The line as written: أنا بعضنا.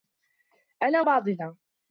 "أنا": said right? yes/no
yes